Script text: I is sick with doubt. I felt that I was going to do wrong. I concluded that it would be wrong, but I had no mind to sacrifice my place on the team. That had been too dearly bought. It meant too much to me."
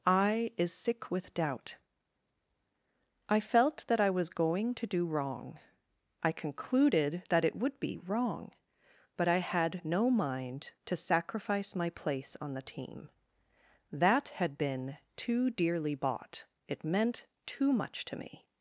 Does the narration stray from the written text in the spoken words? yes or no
no